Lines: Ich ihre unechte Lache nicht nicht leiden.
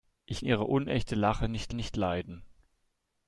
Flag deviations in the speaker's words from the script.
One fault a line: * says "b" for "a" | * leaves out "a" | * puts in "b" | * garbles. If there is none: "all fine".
all fine